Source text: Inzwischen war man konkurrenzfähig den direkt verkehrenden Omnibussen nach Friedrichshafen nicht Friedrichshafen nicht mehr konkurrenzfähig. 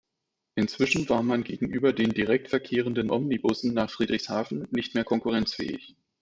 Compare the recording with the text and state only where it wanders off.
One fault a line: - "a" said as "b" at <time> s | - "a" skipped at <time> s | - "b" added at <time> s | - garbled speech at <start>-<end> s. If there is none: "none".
- "konkurrenzfähig" said as "gegenüber" at 1.4 s
- "Friedrichshafen nicht" skipped at 4.9 s